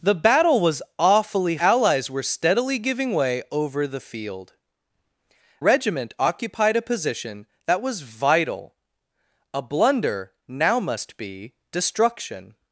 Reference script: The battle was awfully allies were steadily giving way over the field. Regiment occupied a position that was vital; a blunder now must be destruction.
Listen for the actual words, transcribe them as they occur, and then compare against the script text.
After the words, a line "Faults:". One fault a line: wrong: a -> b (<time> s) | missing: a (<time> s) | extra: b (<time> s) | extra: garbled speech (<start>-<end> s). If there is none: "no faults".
The battle was awfully allies were steadily giving way over the field. Regiment occupied a position that was vital; a blunder now must be destruction.
Faults:
no faults